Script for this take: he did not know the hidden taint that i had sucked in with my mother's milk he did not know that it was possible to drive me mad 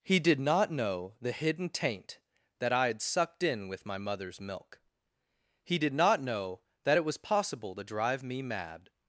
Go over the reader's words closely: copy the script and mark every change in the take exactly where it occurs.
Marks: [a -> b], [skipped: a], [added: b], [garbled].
he did not know the hidden taint that i had sucked in with my mother's milk he did not know that it was possible to drive me mad